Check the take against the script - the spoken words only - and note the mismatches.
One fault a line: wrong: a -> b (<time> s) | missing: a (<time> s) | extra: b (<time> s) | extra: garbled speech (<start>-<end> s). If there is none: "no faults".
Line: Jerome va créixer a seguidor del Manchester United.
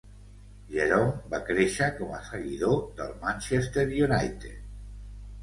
extra: com (2.0 s)